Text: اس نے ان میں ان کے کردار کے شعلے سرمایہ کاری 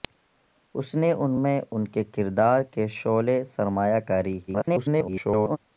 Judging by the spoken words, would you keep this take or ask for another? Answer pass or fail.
fail